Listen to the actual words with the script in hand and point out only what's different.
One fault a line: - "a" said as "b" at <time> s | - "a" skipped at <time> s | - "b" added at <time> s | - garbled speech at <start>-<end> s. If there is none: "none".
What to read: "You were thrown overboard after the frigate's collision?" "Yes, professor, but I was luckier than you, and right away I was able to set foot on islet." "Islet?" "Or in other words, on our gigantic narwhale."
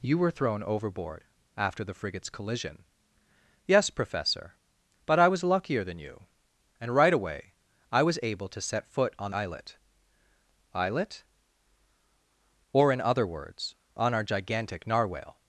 none